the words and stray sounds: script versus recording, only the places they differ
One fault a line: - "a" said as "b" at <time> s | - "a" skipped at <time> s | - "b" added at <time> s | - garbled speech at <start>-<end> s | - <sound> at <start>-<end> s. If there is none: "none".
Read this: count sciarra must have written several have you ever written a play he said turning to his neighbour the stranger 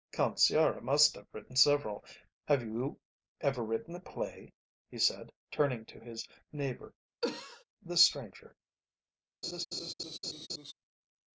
- cough at 7.2-7.6 s
- laugh at 9.4-10.7 s